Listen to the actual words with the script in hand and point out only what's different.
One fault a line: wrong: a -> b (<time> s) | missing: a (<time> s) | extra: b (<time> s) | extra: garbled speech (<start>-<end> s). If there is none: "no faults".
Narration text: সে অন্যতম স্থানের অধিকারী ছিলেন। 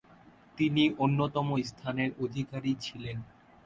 wrong: সে -> তিনি (0.6 s)